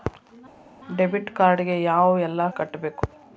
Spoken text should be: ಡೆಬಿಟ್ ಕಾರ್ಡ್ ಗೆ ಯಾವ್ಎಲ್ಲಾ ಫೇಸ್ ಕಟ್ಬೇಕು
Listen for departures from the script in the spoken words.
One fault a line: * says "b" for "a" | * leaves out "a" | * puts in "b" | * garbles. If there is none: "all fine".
* leaves out "ಫೇಸ್"